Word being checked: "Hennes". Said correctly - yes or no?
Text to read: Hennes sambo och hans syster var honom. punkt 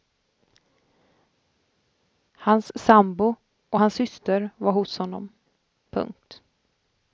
no